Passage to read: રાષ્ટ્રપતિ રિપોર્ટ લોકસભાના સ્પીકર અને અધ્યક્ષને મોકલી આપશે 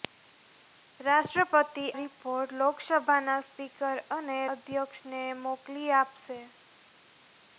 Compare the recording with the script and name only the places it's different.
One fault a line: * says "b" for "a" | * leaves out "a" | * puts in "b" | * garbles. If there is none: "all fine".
all fine